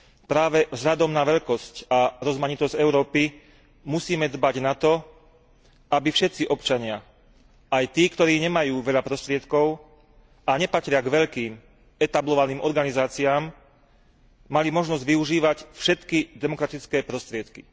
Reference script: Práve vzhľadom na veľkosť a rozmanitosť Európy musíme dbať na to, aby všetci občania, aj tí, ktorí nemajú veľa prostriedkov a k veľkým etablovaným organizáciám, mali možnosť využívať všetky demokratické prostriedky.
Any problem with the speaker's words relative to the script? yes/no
yes